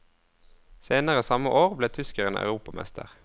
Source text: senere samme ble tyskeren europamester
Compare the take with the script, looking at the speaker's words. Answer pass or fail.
fail